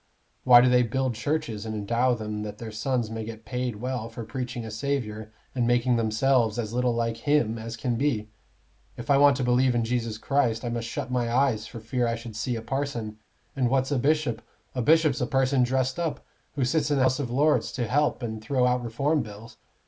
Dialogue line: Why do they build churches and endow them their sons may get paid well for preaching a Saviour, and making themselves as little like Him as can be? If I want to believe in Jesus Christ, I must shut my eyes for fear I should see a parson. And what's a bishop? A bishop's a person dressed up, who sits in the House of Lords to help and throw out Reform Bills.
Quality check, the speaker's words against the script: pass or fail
fail